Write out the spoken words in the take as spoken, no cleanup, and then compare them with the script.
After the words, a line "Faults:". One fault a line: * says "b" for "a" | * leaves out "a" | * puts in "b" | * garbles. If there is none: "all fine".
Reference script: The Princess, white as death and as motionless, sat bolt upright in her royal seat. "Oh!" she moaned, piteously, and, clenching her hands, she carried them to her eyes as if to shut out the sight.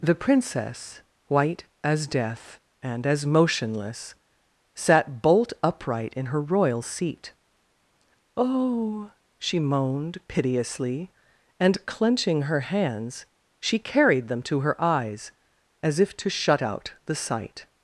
The Princess, white as death and as motionless, sat bolt upright in her royal seat. "Oh!" she moaned, piteously, and, clenching her hands, she carried them to her eyes as if to shut out the sight.
Faults:
all fine